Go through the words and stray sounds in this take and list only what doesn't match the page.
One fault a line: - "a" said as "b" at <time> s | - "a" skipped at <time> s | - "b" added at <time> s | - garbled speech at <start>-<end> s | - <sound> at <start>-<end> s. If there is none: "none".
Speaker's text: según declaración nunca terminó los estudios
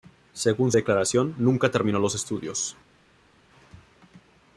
none